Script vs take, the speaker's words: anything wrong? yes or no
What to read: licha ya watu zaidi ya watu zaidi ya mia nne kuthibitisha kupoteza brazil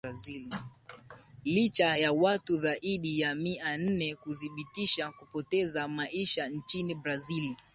yes